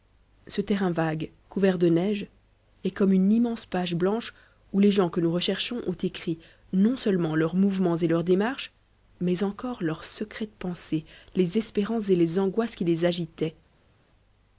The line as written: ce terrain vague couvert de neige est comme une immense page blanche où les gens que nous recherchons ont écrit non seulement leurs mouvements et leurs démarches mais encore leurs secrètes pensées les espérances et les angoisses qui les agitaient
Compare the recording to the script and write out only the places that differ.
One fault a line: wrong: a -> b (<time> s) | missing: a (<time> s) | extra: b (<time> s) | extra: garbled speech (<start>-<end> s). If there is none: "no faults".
no faults